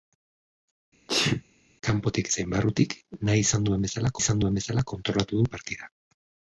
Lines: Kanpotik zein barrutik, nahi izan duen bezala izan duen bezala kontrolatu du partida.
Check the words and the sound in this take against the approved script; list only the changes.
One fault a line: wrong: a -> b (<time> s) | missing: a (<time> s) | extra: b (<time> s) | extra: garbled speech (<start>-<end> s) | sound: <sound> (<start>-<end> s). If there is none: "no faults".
sound: sneeze (1.1-1.4 s)